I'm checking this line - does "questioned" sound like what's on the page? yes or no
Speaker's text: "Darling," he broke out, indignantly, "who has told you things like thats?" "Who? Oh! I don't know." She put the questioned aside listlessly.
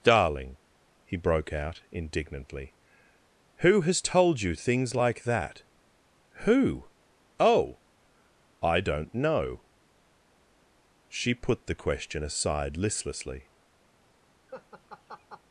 no